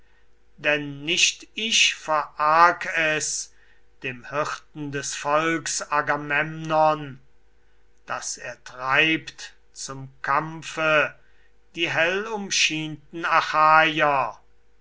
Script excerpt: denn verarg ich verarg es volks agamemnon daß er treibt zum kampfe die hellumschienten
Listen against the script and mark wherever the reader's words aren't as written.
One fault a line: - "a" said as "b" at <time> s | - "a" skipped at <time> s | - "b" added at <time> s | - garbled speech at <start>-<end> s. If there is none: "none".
- "verarg" said as "nicht" at 1.1 s
- "dem hirten des" added at 4.0 s